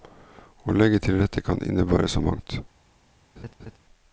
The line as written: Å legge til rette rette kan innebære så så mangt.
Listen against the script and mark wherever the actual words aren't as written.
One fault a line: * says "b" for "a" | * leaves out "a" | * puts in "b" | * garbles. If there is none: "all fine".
* leaves out "rette"
* leaves out "så"